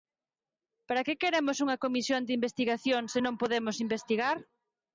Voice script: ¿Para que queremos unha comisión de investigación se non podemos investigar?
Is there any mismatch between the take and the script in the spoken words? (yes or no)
no